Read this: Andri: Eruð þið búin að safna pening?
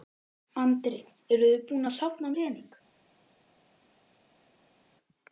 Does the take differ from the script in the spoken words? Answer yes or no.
no